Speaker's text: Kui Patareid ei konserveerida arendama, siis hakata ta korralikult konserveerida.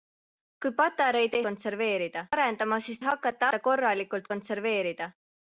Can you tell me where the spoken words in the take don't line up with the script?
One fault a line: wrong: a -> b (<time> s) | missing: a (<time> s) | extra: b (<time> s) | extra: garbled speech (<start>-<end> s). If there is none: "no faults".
no faults